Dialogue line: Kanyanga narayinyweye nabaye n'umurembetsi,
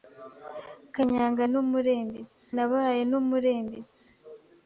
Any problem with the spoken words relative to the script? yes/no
yes